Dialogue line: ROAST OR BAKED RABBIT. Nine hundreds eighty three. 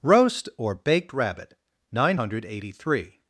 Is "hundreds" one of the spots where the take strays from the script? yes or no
yes